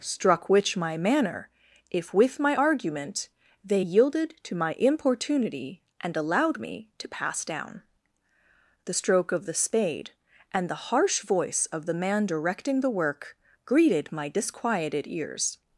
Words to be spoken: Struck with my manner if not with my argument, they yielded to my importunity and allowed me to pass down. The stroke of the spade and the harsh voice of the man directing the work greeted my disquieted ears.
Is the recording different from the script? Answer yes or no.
yes